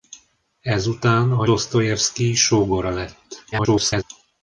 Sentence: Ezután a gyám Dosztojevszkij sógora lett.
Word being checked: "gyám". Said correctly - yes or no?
no